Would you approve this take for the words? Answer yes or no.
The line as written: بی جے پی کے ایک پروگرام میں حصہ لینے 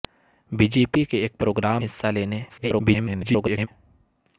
no